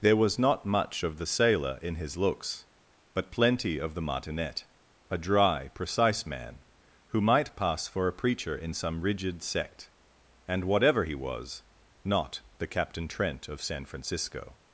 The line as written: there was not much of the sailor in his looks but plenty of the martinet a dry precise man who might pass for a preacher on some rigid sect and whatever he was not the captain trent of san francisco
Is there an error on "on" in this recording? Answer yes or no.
yes